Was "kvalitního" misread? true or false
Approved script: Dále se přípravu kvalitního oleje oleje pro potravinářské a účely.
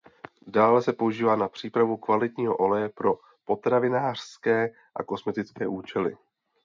false